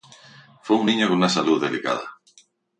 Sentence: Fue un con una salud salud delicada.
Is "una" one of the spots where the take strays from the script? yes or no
no